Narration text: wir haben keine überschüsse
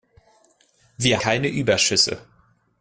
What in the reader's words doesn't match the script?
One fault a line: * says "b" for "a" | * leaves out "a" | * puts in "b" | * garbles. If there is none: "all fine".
* leaves out "haben"